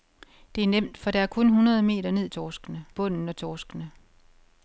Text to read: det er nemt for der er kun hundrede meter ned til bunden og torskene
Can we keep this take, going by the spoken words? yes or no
no